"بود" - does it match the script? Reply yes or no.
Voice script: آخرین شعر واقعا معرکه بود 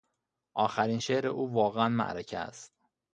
no